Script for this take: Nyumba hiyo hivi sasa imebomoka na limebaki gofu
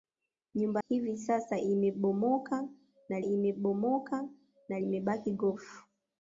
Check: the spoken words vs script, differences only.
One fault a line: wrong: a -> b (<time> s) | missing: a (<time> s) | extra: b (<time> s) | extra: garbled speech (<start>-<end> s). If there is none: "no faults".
missing: hiyo (0.8 s)
extra: imebomoka na (3.2 s)